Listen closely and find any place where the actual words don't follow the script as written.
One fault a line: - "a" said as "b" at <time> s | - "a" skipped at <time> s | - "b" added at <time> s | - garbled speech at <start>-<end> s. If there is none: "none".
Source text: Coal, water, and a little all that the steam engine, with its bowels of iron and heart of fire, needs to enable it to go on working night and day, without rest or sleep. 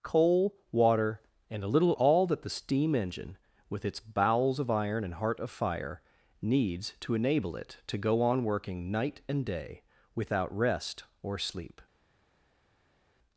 none